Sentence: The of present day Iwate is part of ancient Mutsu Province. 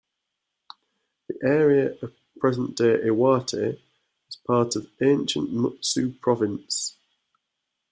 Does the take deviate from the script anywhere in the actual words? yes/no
yes